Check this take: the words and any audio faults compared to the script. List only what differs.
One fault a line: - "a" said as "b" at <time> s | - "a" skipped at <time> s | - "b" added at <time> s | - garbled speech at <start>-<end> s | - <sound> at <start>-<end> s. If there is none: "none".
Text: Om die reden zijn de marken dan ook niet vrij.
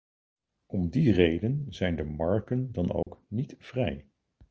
- dropout at 3.0-3.1 s